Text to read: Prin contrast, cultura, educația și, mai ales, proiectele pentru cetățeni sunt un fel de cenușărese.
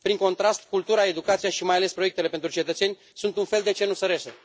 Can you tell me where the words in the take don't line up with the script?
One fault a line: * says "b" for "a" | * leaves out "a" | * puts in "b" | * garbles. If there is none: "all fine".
all fine